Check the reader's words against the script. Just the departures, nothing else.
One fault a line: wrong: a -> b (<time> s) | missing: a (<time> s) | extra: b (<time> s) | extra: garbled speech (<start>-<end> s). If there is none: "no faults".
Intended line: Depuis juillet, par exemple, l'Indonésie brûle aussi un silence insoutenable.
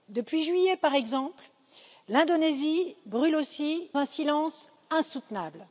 no faults